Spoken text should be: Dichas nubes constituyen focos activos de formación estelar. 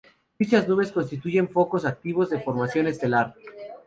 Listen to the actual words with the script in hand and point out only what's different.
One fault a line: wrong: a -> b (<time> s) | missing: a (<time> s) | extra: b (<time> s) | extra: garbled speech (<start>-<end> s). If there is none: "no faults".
no faults